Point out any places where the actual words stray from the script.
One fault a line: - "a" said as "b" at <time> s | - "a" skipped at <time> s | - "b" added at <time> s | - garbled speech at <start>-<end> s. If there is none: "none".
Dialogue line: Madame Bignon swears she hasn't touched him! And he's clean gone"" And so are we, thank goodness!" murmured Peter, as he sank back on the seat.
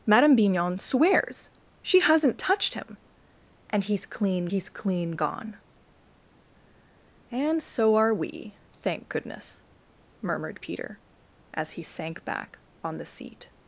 - "he's clean" added at 4.5 s